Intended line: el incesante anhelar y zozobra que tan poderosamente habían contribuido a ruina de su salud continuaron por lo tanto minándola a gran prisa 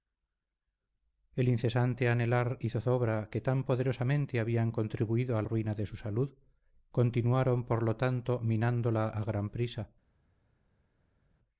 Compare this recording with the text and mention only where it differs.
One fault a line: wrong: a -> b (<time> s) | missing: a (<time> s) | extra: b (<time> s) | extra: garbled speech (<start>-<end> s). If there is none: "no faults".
no faults